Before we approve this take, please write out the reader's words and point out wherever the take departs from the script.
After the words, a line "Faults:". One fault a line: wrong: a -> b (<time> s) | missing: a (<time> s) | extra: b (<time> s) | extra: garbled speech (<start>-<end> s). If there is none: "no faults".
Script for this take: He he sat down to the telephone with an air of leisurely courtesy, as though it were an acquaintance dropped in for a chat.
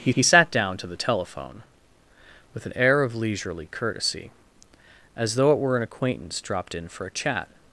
He he sat down to the telephone with an air of leisurely courtesy, as though it were an acquaintance dropped in for a chat.
Faults:
no faults